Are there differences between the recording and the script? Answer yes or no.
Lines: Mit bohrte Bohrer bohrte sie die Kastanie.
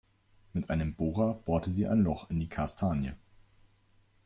yes